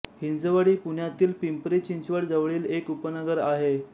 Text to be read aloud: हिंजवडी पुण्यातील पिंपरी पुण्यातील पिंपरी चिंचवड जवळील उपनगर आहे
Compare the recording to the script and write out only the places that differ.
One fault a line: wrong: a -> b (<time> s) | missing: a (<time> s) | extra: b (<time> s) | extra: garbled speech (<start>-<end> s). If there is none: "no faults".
missing: पुण्यातील पिंपरी (1.8 s)
extra: एक (2.7 s)